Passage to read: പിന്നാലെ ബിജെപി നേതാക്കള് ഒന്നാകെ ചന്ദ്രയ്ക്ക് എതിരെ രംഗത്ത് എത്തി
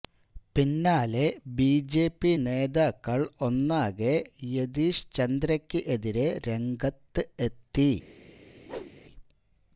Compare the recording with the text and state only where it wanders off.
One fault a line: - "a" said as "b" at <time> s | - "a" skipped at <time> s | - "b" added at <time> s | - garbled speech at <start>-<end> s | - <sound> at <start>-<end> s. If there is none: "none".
- "യതീഷ്" added at 4.5 s
- whoosh at 8.6-8.9 s